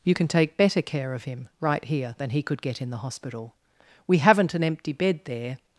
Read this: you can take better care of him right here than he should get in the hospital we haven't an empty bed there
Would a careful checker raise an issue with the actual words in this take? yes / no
yes